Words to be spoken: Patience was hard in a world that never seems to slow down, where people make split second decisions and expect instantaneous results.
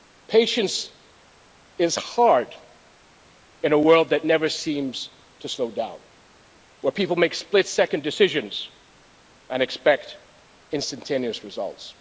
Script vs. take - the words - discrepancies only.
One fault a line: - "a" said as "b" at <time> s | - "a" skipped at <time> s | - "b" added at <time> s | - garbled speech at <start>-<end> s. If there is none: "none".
- "was" said as "is" at 1.8 s